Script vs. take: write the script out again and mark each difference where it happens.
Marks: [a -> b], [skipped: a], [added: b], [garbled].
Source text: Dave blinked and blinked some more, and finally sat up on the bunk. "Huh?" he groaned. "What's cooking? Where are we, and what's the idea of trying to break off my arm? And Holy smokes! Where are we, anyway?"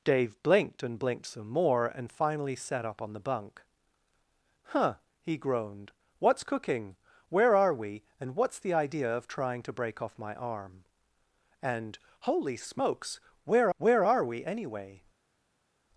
Dave blinked and blinked some more, and finally sat up on the bunk. "Huh?" he groaned. "What's cooking? Where are we, and what's the idea of trying to break off my arm? And Holy smokes! Where [added: where] are we, anyway?"